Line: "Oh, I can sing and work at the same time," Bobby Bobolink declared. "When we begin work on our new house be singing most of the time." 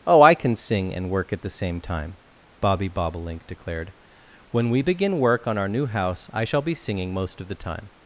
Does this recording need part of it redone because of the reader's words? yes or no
yes